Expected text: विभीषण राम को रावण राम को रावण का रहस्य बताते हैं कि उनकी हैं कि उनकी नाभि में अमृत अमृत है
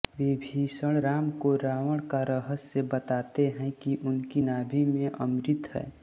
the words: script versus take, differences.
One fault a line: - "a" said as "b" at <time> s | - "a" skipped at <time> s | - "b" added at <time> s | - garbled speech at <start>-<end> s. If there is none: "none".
- "राम को रावण" skipped at 2.0 s
- "हैं कि उनकी" skipped at 4.4 s
- "अमृत" skipped at 5.7 s